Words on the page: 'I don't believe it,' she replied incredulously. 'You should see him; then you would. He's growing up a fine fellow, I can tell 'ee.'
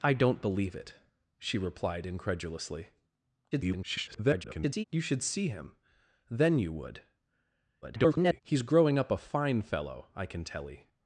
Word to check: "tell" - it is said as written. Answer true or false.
true